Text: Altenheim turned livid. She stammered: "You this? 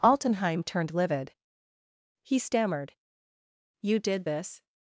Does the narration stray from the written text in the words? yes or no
yes